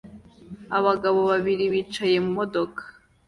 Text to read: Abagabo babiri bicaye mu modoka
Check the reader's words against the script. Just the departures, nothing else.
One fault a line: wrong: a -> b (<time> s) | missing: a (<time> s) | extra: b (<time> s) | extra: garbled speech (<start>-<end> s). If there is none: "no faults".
no faults